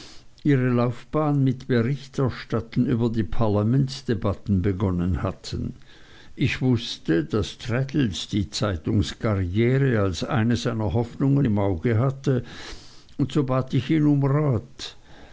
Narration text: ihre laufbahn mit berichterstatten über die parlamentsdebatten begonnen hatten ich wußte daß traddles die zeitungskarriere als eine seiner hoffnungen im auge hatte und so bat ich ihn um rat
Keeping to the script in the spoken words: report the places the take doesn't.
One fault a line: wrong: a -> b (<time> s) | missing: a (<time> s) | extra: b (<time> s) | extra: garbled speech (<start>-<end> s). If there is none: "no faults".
no faults